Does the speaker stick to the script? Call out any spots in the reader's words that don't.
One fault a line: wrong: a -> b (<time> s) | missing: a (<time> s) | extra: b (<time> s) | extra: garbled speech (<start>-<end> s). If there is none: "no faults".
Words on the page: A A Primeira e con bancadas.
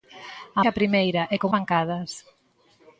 no faults